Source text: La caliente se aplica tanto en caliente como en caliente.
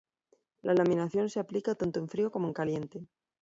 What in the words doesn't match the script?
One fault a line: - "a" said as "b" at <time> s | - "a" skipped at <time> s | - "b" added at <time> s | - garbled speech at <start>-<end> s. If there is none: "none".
- "caliente" said as "laminación" at 0.7 s
- "caliente" said as "frío" at 2.1 s